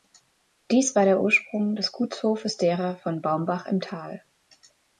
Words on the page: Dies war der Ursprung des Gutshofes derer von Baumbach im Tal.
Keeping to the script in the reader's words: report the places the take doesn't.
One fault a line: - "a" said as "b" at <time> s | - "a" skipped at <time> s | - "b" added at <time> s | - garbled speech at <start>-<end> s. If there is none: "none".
none